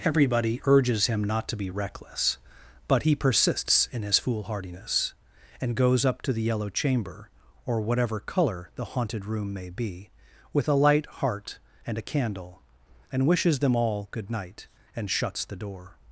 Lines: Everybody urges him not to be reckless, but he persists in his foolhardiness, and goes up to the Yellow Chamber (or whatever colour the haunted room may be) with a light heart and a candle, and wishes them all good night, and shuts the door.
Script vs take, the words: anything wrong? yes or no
no